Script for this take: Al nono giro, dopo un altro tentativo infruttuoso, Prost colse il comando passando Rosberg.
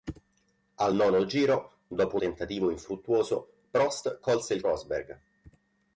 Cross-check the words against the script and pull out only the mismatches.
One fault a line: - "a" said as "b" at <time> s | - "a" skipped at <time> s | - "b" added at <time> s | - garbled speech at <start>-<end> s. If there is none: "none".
- "altro" skipped at 2.2 s
- "comando passando" skipped at 4.6 s